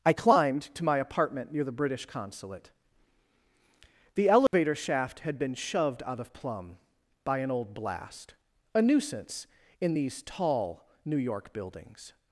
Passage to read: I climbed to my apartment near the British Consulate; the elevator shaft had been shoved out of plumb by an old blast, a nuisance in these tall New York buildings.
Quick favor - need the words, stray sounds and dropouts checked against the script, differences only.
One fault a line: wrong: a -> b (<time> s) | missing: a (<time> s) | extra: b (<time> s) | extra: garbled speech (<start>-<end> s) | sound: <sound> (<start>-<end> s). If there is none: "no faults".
sound: dropout (4.5-4.5 s)